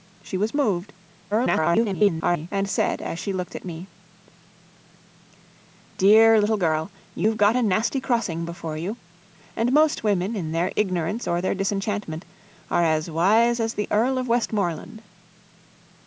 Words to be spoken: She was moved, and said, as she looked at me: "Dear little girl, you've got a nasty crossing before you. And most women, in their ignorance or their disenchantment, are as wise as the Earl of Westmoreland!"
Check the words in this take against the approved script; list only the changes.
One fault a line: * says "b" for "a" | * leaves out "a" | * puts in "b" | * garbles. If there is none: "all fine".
* garbles